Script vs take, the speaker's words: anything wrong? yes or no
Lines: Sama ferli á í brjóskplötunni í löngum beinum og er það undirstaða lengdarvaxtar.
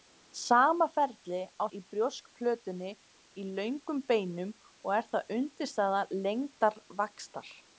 no